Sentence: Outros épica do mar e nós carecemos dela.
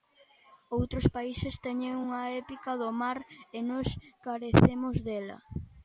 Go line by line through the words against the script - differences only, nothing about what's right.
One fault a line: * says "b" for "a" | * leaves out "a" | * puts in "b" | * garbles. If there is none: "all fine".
* puts in "países teñen unha"